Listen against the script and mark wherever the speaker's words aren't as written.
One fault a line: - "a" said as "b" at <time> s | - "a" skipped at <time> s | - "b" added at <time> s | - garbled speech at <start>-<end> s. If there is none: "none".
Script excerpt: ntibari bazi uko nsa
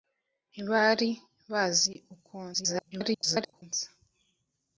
- garbled speech at 2.5-3.6 s